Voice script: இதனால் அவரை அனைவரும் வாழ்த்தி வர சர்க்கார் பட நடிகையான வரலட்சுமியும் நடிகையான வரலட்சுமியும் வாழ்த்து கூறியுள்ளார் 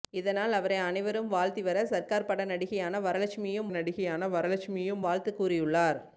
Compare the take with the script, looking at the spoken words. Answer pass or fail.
pass